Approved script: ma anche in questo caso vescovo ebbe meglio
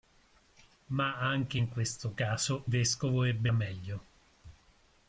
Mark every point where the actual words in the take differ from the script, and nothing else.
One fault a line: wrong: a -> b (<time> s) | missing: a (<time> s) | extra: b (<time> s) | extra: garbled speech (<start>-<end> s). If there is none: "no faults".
no faults